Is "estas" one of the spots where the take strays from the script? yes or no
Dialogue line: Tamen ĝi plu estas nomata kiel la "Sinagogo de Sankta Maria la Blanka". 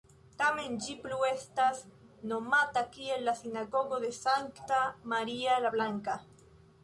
no